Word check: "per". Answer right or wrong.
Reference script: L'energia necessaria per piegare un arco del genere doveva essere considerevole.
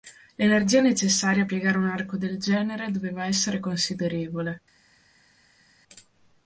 wrong